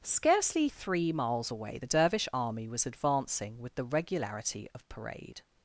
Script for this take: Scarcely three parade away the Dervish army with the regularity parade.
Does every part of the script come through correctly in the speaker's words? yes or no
no